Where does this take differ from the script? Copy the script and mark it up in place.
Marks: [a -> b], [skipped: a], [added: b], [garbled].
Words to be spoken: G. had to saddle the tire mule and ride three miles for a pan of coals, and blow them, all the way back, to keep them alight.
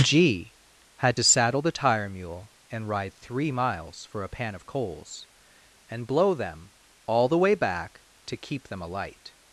G. had to saddle the tire mule and ride three miles for a pan of coals, and blow them, all the way back, to keep them alight.